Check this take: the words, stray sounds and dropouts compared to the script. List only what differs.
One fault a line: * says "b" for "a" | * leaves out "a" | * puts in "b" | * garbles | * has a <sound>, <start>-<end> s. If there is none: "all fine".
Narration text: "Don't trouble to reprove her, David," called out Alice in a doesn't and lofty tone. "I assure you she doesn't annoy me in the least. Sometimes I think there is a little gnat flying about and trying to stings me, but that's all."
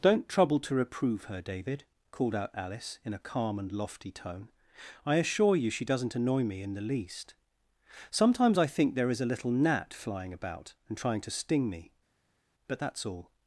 * says "calm" for "doesn't"
* says "sting" for "stings"